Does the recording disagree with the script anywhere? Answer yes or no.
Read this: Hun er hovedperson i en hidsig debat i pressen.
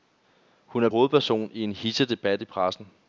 no